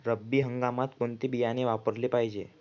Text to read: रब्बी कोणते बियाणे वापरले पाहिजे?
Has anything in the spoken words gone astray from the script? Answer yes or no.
yes